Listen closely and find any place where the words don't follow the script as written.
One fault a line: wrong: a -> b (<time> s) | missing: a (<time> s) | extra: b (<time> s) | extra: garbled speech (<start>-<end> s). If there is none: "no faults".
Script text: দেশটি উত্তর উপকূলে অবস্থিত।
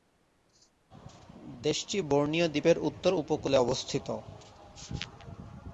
extra: বোর্নিও দ্বীপের (2.1 s)